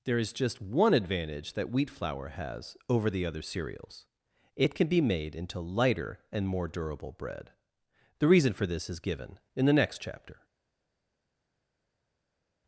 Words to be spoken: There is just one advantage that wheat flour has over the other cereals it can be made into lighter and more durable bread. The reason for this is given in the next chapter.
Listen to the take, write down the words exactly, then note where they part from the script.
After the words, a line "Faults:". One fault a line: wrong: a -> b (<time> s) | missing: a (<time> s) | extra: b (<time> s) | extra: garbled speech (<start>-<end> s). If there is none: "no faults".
There is just one advantage that wheat flour has over the other cereals it can be made into lighter and more durable bread. The reason for this is given in the next chapter.
Faults:
no faults